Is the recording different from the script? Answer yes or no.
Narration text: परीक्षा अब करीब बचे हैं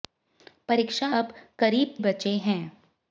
no